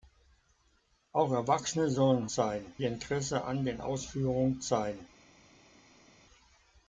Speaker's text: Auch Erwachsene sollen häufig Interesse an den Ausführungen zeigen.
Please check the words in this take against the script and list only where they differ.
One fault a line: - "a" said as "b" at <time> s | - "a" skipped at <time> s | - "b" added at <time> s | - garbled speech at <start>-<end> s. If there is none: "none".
- "häufig" said as "zeigen" at 2.3 s